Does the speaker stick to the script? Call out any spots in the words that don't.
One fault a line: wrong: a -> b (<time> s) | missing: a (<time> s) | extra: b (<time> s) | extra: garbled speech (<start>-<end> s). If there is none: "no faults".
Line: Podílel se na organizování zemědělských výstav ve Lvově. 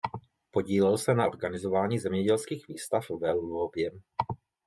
no faults